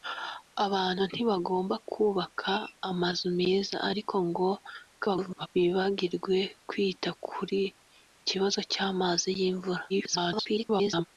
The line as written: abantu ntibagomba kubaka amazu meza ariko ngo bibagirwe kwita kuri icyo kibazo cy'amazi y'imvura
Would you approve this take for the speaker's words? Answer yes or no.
no